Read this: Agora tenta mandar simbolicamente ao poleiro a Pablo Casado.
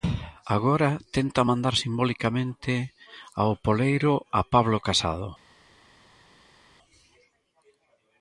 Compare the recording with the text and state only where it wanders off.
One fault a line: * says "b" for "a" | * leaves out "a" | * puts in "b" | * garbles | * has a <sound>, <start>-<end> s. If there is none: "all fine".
all fine